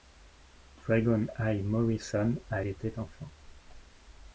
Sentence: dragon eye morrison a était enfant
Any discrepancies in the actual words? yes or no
no